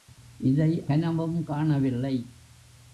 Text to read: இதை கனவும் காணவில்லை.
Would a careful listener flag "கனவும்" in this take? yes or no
no